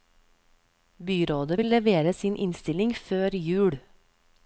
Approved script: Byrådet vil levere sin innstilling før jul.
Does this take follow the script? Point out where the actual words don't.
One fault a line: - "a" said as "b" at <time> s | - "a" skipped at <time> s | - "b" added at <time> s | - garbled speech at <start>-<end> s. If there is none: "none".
none